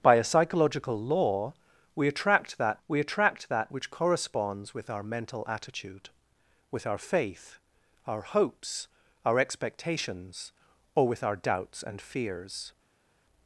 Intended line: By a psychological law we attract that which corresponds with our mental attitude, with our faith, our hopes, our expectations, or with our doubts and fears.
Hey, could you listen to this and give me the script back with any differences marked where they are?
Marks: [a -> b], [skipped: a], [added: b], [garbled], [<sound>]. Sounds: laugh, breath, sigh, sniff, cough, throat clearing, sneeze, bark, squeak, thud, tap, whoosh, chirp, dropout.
By a psychological law we attract that [added: we attract that] which corresponds with our mental attitude, with our faith, our hopes, our expectations, or with our doubts and fears.